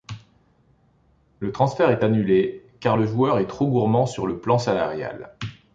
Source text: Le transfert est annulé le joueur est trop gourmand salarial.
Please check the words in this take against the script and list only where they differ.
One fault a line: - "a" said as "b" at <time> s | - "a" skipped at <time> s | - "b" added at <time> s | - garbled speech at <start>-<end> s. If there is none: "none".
- "car" added at 2.8 s
- "sur le plan" added at 4.1 s